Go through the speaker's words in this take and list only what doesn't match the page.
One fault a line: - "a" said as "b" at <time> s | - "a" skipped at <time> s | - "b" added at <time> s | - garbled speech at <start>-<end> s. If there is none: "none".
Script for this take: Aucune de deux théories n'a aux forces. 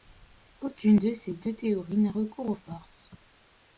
- "ces" added at 1.1 s
- "recours" added at 2.1 s